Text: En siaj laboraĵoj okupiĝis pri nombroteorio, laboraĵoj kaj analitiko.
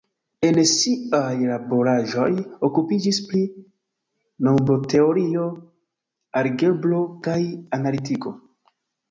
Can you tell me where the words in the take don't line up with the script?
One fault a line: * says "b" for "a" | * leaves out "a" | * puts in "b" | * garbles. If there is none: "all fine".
* says "algebro" for "laboraĵoj"